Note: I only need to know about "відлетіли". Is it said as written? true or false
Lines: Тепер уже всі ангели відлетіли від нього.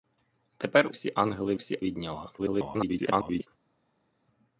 false